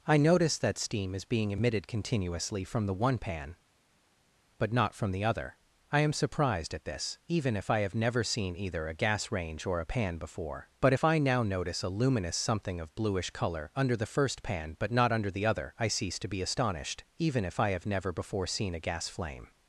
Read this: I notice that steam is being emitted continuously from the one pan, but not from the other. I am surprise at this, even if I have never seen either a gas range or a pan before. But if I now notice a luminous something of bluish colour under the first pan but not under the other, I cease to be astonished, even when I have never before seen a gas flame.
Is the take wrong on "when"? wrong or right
wrong